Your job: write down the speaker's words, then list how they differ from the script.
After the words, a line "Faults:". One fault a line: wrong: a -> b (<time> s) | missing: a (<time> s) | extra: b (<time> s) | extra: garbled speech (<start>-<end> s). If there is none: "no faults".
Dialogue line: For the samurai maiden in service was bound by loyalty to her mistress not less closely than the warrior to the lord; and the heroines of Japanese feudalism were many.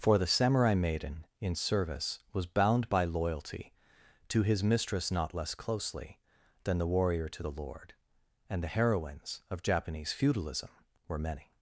For the samurai maiden in service was bound by loyalty to his mistress not less closely than the warrior to the lord; and the heroines of Japanese feudalism were many.
Faults:
wrong: her -> his (4.4 s)